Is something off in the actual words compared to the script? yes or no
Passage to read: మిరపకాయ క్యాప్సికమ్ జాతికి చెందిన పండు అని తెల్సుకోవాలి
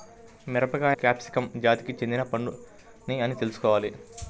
no